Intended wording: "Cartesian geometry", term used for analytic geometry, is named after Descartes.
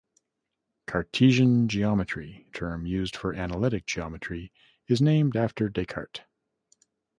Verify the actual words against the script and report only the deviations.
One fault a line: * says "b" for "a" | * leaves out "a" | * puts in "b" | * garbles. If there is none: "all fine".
all fine